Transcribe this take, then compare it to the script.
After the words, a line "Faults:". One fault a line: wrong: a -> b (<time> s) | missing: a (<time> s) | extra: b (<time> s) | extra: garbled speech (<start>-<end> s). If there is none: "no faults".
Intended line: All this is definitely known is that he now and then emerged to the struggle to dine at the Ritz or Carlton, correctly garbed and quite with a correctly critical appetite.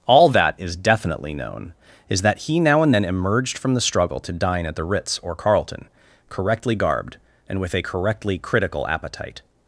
All that is definitely known is that he now and then emerged from the struggle to dine at the Ritz or Carlton, correctly garbed and with a correctly critical appetite.
Faults:
wrong: this -> that (0.3 s)
wrong: to -> from (3.6 s)
missing: quite (7.6 s)